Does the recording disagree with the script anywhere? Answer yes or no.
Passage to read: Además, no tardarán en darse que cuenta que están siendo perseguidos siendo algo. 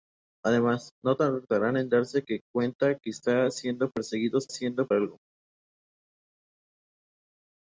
no